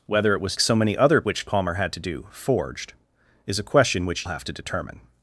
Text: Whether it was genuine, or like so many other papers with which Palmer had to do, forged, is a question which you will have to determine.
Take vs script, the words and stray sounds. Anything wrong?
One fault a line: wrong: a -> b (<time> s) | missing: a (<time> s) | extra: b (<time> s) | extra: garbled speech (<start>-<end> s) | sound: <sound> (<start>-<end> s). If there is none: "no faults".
missing: genuine or like (0.6 s)
missing: papers with (1.2 s)
missing: you will (4.3 s)